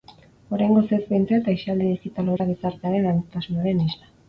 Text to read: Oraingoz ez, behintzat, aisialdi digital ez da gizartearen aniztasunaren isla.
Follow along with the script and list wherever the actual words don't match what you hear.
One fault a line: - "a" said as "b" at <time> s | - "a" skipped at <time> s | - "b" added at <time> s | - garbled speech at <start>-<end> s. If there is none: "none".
none